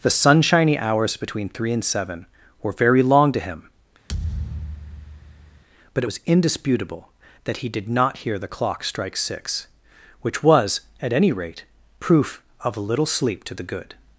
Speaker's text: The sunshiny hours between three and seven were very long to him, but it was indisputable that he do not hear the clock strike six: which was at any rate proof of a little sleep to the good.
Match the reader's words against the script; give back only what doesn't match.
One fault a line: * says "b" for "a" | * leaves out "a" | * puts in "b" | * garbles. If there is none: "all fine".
* says "did" for "do"